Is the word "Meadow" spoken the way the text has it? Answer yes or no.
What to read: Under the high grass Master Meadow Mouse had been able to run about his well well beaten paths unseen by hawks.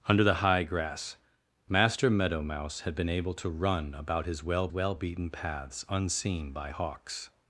yes